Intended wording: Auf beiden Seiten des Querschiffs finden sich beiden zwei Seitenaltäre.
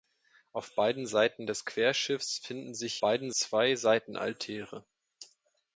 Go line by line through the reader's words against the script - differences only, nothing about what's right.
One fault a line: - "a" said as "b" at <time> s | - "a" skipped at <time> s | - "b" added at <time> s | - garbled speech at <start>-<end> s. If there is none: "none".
none